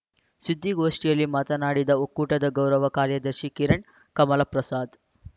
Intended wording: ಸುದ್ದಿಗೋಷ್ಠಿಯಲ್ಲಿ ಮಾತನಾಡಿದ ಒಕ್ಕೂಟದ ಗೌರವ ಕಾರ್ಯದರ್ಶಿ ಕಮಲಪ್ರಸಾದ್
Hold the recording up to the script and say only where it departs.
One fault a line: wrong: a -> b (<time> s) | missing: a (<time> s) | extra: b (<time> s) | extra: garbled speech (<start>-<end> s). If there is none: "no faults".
extra: ಕಿರಣ್ (3.5 s)